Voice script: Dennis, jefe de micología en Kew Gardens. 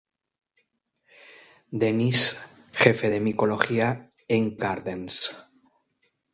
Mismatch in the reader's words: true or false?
true